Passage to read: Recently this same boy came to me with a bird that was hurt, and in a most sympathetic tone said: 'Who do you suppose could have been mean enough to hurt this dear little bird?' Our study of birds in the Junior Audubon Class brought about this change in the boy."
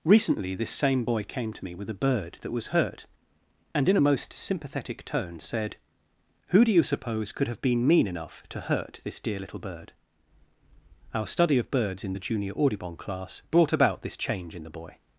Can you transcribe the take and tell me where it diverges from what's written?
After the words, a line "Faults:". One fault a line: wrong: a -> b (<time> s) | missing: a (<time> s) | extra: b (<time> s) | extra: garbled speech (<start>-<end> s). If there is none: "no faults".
Recently this same boy came to me with a bird that was hurt, and in a most sympathetic tone said: 'Who do you suppose could have been mean enough to hurt this dear little bird?' Our study of birds in the Junior Audubon Class brought about this change in the boy."
Faults:
no faults